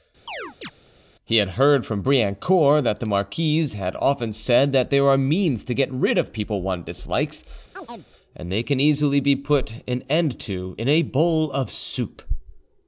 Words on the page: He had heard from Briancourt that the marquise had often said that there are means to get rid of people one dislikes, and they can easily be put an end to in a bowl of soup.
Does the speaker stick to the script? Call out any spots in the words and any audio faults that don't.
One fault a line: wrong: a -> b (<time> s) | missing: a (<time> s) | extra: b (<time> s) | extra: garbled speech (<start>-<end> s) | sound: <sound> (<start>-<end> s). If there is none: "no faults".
sound: chirp (0.3-0.7 s)
sound: chirp (7.7-8.1 s)